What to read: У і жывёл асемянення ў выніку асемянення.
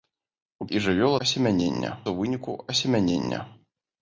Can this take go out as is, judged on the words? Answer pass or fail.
pass